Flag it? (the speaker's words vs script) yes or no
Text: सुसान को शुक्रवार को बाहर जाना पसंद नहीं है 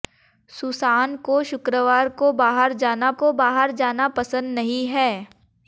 yes